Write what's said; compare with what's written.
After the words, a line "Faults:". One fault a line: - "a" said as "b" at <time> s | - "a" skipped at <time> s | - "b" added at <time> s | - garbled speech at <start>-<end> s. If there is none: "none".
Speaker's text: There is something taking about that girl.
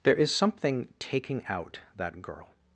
There is something taking out that girl.
Faults:
- "about" said as "out" at 1.5 s